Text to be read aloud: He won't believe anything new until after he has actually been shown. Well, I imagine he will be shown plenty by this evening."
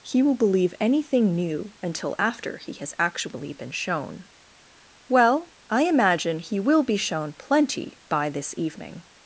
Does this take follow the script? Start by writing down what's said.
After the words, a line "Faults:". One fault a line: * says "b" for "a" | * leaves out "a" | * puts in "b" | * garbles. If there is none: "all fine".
He will believe anything new until after he has actually been shown. Well, I imagine he will be shown plenty by this evening."
Faults:
* says "will" for "won't"